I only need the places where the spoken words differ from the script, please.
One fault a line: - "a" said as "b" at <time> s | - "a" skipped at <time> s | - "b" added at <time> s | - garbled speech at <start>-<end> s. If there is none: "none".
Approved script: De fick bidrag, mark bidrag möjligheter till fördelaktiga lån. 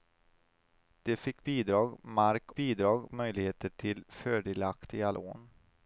none